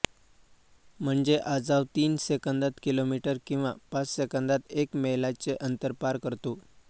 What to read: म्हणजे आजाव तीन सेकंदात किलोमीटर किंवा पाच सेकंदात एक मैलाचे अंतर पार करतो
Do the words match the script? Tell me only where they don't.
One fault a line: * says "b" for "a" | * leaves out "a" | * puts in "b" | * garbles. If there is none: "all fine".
all fine